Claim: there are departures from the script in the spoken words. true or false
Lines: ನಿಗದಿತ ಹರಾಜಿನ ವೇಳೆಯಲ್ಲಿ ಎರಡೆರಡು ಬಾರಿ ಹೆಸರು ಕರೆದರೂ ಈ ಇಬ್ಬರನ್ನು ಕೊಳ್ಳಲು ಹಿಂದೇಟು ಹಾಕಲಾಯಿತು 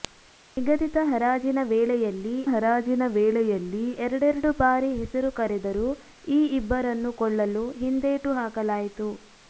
true